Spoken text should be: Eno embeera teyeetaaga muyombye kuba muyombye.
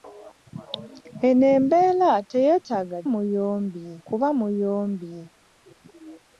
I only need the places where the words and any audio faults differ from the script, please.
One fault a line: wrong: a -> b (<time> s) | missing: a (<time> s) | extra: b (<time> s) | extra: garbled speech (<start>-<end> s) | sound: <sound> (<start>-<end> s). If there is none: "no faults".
no faults